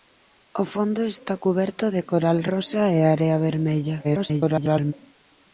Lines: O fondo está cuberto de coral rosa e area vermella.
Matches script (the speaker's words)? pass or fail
fail